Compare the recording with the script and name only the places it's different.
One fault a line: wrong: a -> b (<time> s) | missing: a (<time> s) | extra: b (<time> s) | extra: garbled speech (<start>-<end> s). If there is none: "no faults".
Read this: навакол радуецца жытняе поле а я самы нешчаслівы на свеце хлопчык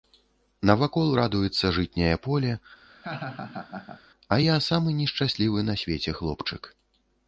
no faults